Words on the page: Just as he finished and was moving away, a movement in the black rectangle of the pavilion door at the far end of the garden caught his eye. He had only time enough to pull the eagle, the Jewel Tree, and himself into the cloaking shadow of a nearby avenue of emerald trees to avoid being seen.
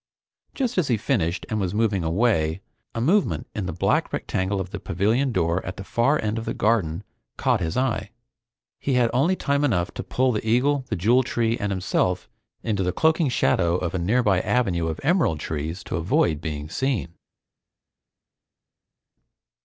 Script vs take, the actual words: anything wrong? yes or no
no